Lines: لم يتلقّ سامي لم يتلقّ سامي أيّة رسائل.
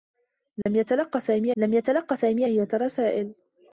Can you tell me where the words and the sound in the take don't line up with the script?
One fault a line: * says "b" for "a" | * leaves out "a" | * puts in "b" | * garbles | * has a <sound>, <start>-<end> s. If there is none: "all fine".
* has a dropout, 0.6-0.7 s